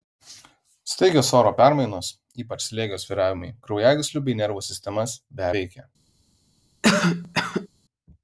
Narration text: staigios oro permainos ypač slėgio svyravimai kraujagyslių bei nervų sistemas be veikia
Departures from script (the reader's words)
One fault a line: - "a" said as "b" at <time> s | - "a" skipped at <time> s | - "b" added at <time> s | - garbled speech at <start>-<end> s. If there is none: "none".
none